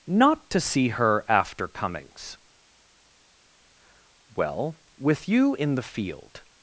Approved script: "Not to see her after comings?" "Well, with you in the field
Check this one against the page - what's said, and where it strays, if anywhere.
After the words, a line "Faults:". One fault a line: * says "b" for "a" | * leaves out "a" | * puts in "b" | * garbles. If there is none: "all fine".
"Not to see her after comings?" "Well, with you in the field
Faults:
all fine